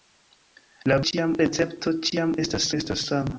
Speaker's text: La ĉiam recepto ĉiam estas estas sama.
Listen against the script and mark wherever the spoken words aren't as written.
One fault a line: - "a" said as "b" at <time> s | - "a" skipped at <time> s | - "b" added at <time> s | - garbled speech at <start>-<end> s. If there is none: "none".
none